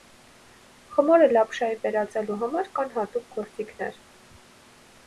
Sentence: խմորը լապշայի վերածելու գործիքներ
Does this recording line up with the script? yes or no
no